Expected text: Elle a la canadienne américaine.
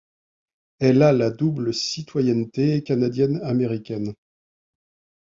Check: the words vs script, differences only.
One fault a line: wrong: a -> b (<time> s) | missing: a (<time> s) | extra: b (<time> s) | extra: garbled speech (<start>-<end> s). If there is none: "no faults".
extra: double citoyenneté (1.3 s)